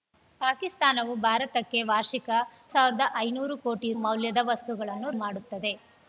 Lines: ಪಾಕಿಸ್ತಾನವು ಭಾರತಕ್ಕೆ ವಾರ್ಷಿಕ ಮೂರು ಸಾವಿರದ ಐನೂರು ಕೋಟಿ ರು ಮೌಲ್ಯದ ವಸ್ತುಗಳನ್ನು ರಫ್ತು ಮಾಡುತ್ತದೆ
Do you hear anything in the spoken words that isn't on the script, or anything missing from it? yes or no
yes